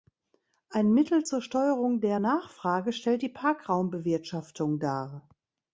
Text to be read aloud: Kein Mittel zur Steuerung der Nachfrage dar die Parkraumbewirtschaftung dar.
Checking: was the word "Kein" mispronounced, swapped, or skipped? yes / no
yes